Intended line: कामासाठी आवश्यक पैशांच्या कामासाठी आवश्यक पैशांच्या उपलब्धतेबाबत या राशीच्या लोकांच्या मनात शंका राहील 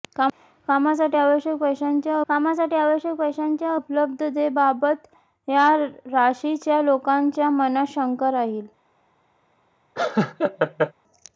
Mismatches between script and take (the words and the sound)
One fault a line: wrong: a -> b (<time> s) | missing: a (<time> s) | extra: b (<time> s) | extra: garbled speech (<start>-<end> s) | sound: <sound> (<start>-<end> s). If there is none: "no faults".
sound: laugh (10.0-10.9 s)